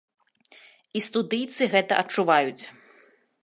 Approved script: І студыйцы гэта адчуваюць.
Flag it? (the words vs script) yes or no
no